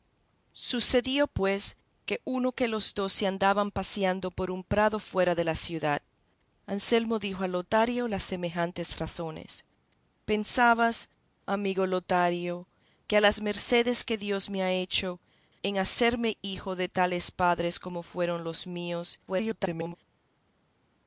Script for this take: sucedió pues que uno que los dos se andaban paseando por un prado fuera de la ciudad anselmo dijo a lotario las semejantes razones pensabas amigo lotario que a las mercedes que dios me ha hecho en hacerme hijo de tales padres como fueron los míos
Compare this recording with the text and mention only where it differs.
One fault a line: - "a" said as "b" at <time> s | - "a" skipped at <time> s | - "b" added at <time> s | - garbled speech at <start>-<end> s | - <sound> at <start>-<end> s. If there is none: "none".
- garbled speech at 19.3-20.0 s